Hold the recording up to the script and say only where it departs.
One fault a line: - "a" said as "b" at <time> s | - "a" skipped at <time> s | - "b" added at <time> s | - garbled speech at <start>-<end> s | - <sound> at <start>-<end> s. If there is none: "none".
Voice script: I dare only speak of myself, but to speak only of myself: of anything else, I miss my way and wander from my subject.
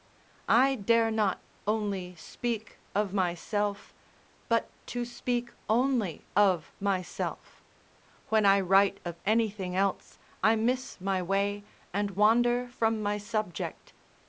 - "not" added at 1.1 s
- "when I write" added at 8.3 s